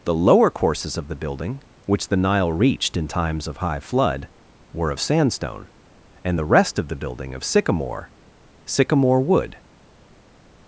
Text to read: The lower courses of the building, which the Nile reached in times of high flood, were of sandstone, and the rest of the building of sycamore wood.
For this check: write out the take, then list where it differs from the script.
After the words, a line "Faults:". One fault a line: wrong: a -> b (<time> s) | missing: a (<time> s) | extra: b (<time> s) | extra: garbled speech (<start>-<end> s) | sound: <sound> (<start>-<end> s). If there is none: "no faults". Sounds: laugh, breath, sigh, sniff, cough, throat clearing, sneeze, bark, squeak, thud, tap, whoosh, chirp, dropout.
The lower courses of the building, which the Nile reached in times of high flood, were of sandstone, and the rest of the building of sycamore sycamore wood.
Faults:
extra: sycamore (8.7 s)